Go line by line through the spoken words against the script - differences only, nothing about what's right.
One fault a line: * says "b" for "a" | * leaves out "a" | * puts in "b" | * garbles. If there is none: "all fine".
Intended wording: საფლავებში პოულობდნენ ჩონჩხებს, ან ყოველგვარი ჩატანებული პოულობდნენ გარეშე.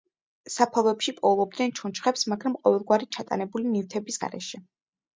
* says "მაგრამ" for "ან"
* says "ნივთების" for "პოულობდნენ"